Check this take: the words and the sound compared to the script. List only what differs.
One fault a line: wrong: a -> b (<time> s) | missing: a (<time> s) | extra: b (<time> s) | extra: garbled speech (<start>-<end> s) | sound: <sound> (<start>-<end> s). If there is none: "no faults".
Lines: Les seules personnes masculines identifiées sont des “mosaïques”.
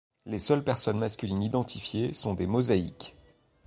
no faults